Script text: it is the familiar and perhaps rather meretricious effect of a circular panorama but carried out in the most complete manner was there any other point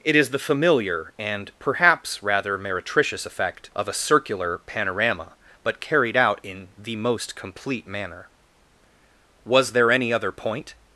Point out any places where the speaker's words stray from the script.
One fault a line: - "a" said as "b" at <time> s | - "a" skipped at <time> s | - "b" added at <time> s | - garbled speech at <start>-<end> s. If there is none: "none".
none